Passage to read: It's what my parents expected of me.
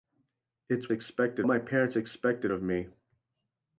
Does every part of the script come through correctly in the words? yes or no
no